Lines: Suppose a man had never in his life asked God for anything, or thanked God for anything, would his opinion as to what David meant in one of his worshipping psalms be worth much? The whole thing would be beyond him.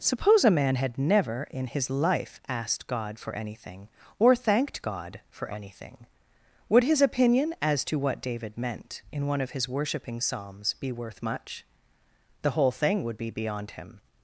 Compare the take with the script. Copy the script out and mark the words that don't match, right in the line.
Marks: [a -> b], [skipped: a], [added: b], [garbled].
Suppose a man had never in his life asked God for anything, or thanked God for anything, would his opinion as to what David meant in one of his worshipping psalms be worth much? The whole thing would be beyond him.